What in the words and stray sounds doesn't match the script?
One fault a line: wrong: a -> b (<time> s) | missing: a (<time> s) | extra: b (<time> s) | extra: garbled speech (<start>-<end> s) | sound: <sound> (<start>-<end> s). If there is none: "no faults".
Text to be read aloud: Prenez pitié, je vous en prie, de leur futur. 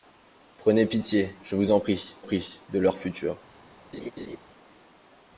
extra: prie (2.2 s)
sound: laugh (3.9-4.4 s)